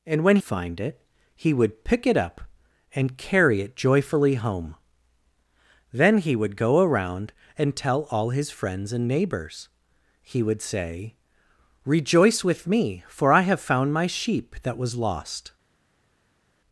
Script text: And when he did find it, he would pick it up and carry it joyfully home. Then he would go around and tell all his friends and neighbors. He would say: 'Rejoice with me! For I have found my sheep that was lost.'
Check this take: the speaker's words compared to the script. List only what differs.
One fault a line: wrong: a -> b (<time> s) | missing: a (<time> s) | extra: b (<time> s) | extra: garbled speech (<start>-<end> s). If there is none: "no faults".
missing: he did (0.4 s)